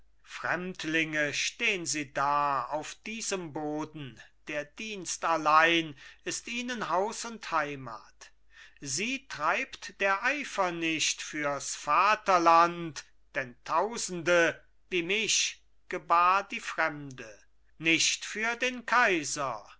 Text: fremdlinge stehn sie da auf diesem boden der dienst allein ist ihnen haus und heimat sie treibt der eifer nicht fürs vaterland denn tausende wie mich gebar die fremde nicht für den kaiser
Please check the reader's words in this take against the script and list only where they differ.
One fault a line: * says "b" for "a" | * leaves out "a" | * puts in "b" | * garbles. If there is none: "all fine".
all fine